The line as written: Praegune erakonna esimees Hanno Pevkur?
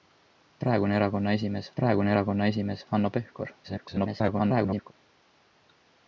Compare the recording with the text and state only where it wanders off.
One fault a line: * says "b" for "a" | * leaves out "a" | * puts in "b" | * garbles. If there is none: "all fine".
* puts in "praegune erakonna esimees"
* garbles